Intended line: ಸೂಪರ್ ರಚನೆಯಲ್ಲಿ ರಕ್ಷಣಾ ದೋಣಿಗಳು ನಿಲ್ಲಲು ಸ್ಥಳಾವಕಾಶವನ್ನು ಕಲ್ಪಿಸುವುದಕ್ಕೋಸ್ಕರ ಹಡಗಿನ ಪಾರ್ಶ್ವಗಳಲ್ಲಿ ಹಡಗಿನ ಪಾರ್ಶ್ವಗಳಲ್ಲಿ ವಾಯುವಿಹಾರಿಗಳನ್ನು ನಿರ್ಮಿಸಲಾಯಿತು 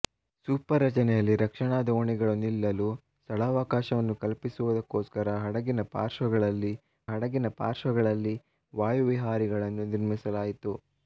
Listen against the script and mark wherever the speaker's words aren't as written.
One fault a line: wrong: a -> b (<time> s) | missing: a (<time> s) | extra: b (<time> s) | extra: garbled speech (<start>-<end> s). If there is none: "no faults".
no faults